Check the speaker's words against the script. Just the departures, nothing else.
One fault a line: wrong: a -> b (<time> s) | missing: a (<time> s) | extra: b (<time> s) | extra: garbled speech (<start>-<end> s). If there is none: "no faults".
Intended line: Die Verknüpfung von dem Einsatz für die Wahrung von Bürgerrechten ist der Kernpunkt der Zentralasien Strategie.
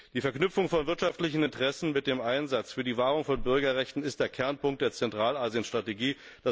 extra: wirtschaftlichen Interessen mit (0.9 s)